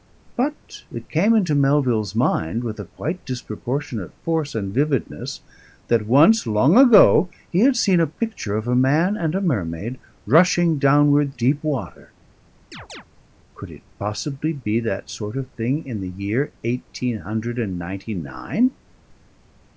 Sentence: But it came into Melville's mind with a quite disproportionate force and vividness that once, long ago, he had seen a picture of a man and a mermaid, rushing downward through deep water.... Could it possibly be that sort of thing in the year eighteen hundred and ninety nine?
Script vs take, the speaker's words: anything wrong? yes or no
yes